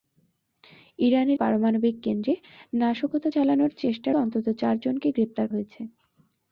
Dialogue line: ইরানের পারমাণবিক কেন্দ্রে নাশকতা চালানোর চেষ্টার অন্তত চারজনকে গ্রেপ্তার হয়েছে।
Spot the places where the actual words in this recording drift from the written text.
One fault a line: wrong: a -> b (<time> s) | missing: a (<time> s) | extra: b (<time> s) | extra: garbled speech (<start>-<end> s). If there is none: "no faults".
no faults